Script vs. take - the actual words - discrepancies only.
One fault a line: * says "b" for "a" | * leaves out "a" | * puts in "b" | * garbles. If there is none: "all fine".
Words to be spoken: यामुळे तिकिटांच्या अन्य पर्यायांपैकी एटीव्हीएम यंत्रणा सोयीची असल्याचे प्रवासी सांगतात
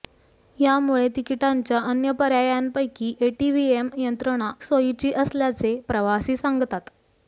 all fine